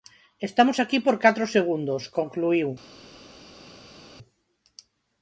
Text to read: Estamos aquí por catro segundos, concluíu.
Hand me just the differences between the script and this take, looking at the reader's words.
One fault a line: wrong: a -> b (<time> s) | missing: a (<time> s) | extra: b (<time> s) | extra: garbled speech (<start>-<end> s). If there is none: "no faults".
no faults